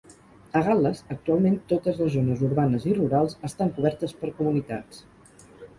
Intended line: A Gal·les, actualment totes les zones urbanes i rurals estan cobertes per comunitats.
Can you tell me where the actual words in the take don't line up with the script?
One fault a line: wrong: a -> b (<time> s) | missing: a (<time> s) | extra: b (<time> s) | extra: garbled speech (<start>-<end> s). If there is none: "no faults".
no faults